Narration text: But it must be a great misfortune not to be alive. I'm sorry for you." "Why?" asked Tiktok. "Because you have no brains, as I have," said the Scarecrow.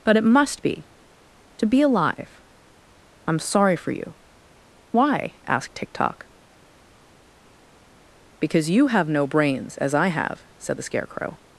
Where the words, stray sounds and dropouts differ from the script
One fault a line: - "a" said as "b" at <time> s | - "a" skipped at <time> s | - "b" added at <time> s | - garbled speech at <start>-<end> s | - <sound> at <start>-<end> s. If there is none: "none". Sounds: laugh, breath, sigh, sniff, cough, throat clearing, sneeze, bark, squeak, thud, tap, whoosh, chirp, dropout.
- "a great misfortune not" skipped at 0.8 s